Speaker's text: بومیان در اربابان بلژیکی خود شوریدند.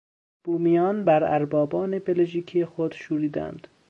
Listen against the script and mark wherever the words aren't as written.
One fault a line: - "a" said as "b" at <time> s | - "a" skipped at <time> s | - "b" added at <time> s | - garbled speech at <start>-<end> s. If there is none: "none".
- "در" said as "بر" at 1.0 s